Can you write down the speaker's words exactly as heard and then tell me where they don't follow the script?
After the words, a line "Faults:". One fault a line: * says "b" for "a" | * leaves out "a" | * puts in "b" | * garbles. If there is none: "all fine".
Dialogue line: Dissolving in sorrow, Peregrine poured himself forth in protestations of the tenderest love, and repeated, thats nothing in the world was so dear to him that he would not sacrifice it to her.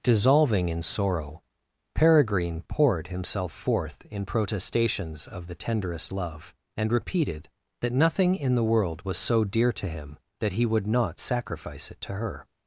Dissolving in sorrow, Peregrine poured himself forth in protestations of the tenderest love, and repeated, that nothing in the world was so dear to him that he would not sacrifice it to her.
Faults:
* says "that" for "thats"